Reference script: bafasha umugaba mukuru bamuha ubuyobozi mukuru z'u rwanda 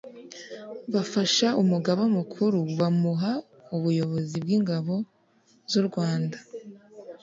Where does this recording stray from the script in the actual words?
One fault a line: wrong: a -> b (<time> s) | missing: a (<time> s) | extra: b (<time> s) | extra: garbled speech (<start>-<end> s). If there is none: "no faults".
wrong: mukuru -> bw'ingabo (4.4 s)